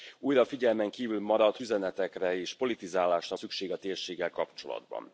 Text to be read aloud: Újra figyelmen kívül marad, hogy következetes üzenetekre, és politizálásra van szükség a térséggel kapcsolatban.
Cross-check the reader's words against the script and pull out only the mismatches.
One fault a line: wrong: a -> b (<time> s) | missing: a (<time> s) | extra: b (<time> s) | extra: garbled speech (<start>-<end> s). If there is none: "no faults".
missing: hogy következetes (1.6 s)
missing: van (3.4 s)